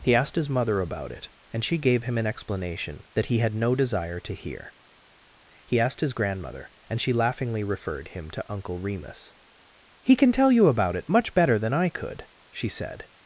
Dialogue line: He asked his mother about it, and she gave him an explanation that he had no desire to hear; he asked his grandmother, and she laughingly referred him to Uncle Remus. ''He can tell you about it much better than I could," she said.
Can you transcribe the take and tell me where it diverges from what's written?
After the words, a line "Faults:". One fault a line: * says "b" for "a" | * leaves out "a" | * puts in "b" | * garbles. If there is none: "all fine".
He asked his mother about it, and she gave him an explanation that he had no desire to hear; he asked his grandmother, and she laughingly referred him to Uncle Remus. ''He can tell you about it much better than I could," she said.
Faults:
all fine